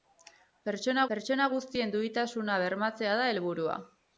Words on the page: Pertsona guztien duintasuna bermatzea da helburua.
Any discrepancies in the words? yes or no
yes